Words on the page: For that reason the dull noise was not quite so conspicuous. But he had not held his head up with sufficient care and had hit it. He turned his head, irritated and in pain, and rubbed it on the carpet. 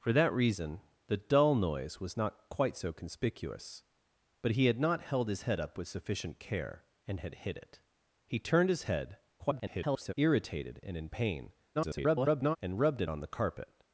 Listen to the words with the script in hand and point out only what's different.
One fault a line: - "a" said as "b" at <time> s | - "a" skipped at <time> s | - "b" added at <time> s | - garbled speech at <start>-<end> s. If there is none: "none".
- garbled speech at 9.4-10.1 s
- garbled speech at 11.7-12.6 s